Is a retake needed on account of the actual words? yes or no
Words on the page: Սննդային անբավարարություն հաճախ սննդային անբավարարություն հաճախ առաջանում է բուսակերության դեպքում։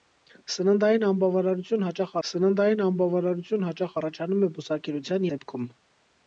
no